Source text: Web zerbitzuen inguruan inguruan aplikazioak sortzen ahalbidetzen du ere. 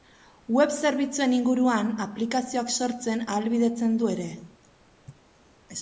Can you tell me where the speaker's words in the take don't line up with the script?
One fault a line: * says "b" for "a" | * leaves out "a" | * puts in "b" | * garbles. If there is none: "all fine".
* leaves out "inguruan"